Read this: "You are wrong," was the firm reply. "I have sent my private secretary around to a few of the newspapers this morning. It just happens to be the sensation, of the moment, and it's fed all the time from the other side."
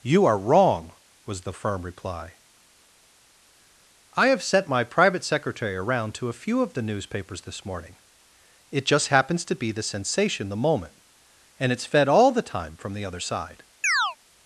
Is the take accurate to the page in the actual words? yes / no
no